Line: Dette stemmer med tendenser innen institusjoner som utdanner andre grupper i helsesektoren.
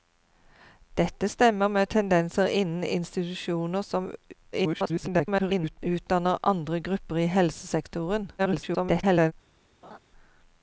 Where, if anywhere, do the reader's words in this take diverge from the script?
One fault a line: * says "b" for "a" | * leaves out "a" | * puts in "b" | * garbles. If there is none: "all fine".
* garbles
* garbles